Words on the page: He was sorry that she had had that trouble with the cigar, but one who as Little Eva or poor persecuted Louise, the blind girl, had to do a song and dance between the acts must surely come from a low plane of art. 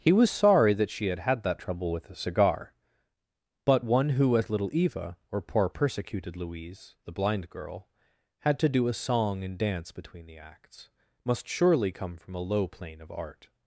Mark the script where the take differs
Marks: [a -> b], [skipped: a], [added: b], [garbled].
He was sorry that she had had that trouble with [the -> a] cigar, but one who as Little Eva or poor persecuted Louise, the blind girl, had to do a song and dance between the acts must surely come from a low plane of art.